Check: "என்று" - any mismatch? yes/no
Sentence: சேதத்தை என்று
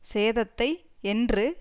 no